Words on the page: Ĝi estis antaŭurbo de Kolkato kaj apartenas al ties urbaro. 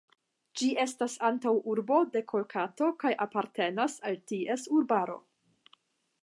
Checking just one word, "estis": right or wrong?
wrong